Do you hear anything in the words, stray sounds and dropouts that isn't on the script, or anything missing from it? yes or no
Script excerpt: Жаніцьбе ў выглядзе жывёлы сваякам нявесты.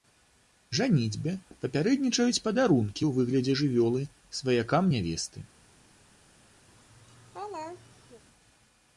yes